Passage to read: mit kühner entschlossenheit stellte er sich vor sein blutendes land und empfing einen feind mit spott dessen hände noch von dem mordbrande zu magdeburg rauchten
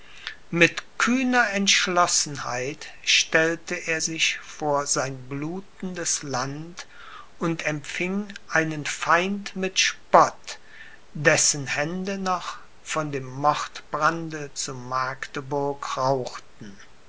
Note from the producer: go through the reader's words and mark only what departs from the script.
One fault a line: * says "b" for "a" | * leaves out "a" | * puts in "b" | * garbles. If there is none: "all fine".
all fine